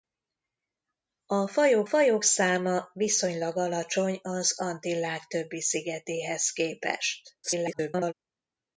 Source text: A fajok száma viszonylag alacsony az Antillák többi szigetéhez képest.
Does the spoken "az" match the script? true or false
true